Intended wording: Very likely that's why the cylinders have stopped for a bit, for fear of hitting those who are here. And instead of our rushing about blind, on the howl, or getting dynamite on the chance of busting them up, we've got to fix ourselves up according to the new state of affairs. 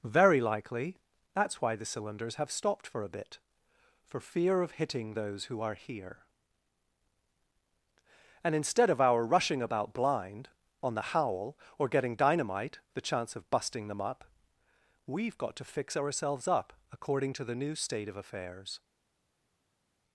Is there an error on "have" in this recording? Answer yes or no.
no